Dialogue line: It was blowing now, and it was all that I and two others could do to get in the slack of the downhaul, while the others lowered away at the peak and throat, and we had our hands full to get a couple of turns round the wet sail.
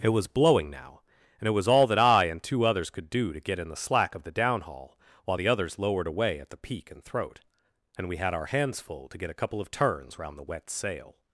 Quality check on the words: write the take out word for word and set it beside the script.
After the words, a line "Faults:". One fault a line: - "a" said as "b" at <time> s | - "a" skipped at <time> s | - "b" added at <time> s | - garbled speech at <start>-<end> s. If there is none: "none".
It was blowing now, and it was all that I and two others could do to get in the slack of the downhaul, while the others lowered away at the peak and throat, and we had our hands full to get a couple of turns round the wet sail.
Faults:
none